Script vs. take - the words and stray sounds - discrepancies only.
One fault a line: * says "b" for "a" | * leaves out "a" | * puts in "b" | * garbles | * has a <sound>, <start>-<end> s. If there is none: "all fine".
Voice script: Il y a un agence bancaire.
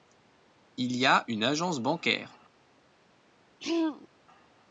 * says "une" for "un"
* has a throat clearing, 3.6-4.1 s